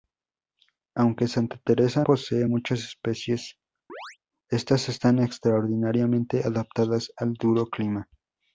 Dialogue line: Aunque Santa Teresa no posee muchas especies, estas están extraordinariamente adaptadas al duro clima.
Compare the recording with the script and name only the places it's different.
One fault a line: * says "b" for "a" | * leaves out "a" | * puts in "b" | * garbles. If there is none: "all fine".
* leaves out "no"